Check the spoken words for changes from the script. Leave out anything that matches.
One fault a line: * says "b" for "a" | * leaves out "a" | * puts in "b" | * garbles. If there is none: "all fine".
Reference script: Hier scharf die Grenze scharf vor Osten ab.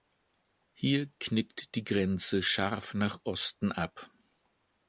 * says "knickt" for "scharf"
* says "nach" for "vor"